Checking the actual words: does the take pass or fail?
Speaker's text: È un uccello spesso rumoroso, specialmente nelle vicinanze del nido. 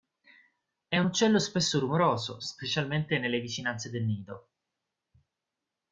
pass